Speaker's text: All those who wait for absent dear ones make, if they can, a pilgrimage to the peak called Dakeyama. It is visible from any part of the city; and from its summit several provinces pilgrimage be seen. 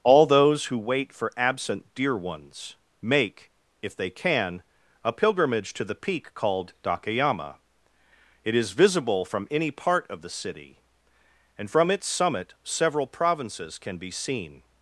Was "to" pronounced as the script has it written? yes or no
yes